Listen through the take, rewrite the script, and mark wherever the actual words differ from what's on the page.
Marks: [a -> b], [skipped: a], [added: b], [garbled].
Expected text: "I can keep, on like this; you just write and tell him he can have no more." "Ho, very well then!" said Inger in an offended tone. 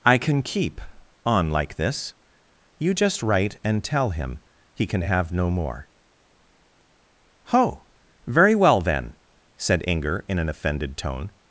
"I can keep, on like this; you just write and tell him he can have no more." "Ho, very well then!" said Inger in an offended tone.